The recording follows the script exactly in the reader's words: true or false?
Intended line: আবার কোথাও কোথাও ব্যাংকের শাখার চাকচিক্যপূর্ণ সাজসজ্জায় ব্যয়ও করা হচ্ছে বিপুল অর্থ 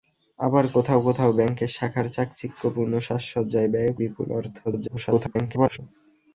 false